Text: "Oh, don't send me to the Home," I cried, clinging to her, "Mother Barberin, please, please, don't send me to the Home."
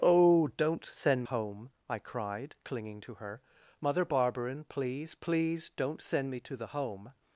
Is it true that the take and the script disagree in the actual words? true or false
true